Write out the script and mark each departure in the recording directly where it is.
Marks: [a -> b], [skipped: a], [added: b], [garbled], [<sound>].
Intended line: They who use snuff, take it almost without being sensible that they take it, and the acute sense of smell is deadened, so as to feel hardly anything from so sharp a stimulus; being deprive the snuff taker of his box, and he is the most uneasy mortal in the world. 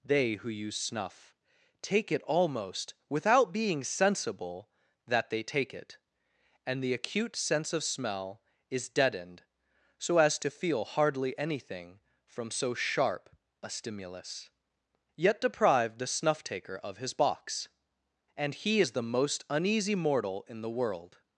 They who use snuff, take it almost without being sensible that they take it, and the acute sense of smell is deadened, so as to feel hardly anything from so sharp a stimulus; [being -> yet] deprive the snuff taker of his box, and he is the most uneasy mortal in the world.